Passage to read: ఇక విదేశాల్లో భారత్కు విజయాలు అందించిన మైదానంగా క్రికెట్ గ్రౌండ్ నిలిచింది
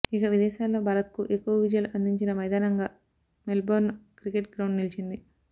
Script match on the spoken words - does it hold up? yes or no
no